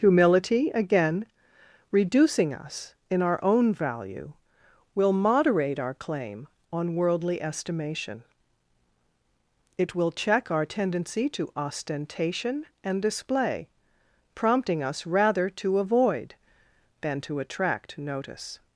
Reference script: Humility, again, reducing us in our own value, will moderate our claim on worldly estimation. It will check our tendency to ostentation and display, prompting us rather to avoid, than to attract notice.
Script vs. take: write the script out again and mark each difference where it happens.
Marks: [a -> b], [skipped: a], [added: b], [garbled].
Humility, again, reducing us in our own value, will moderate our claim on worldly estimation. It will check our tendency to ostentation and display, prompting us rather to avoid, than to attract notice.